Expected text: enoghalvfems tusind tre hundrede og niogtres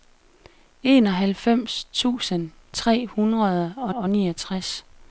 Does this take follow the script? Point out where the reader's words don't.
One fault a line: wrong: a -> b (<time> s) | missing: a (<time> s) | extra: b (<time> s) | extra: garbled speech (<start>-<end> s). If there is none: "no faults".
extra: og (3.9 s)